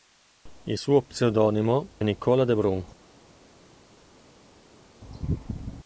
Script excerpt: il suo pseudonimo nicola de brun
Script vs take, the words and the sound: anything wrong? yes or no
no